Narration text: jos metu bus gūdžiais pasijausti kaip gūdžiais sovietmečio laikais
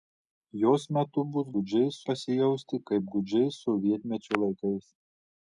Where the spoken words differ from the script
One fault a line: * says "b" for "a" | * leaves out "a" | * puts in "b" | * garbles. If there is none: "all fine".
all fine